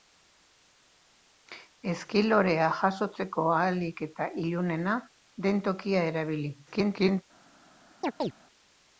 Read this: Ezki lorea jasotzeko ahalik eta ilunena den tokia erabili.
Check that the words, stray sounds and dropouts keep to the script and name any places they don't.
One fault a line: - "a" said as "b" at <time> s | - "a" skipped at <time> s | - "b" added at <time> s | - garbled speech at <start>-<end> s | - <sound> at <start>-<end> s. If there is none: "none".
- garbled speech at 6.7-7.2 s
- chirp at 8.0-8.3 s